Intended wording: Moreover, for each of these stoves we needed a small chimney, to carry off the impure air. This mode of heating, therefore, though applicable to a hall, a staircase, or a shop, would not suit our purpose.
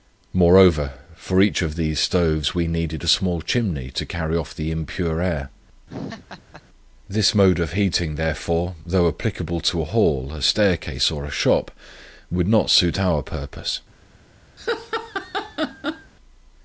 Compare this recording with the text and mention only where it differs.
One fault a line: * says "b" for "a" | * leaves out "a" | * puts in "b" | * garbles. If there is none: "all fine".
all fine